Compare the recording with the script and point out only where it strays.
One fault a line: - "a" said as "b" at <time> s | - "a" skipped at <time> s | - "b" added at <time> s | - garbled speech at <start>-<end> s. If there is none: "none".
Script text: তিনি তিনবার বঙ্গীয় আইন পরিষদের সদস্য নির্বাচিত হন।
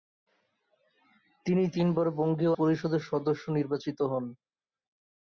- "আইন" skipped at 2.5 s